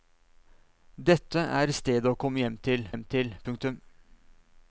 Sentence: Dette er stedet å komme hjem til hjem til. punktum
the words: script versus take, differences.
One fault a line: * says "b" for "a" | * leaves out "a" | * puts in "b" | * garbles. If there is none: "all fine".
all fine